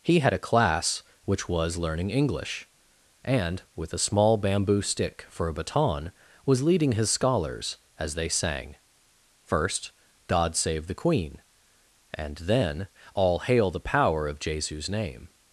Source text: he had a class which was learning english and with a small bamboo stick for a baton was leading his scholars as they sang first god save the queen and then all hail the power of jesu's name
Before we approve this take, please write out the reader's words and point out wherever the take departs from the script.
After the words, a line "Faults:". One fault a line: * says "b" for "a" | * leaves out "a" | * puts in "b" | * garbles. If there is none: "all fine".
he had a class which was learning english and with a small bamboo stick for a baton was leading his scholars as they sang first god save the queen and then all hail the power of jesu's name
Faults:
all fine